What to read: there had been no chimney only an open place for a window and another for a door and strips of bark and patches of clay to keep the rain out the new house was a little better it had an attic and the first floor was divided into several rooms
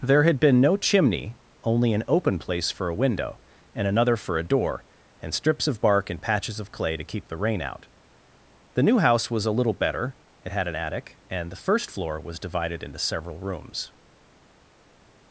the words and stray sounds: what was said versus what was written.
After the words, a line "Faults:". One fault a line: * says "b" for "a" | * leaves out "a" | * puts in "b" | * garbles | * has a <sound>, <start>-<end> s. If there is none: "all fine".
there had been no chimney only an open place for a window and another for a door and strips of bark and patches of clay to keep the rain out the new house was a little better it had an attic and the first floor was divided into several rooms
Faults:
all fine